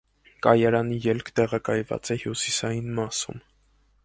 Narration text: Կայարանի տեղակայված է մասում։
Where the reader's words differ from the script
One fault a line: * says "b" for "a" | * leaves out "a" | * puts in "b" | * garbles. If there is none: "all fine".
* puts in "ելք"
* puts in "հյուսիսային"